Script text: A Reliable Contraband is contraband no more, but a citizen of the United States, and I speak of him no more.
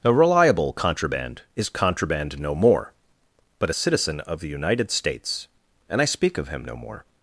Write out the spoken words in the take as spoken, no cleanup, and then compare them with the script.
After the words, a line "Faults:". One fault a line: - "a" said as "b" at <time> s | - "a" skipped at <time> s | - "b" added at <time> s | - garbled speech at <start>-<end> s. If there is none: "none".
A Reliable Contraband is contraband no more, but a citizen of the United States, and I speak of him no more.
Faults:
none